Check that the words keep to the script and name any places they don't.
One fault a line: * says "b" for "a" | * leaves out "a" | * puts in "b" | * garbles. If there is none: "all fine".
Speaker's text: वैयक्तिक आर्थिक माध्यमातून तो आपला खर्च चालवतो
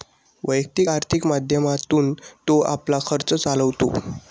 all fine